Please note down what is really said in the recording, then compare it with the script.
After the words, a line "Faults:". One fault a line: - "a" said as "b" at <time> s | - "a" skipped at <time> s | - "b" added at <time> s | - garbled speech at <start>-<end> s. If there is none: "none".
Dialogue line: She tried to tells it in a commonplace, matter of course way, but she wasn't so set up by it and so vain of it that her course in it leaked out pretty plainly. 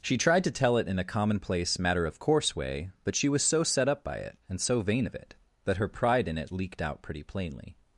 She tried to tell it in a commonplace, matter of course way, but she was so set up by it and so vain of it that her pride in it leaked out pretty plainly.
Faults:
- "tells" said as "tell" at 0.5 s
- "wasn't" said as "was" at 3.3 s
- "course" said as "pride" at 5.9 s